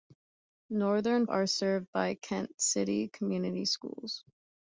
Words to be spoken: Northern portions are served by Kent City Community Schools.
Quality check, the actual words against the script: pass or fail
fail